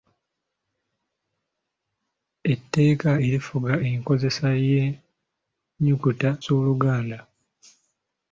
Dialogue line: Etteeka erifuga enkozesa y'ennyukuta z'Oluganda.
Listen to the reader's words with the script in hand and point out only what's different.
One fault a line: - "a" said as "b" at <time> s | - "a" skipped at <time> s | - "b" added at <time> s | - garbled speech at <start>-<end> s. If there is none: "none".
none